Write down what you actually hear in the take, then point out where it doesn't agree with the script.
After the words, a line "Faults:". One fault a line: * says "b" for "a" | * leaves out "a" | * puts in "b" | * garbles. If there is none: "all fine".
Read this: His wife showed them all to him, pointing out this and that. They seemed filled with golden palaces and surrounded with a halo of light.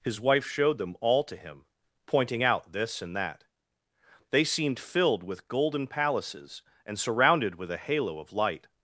His wife showed them all to him, pointing out this and that. They seemed filled with golden palaces and surrounded with a halo of light.
Faults:
all fine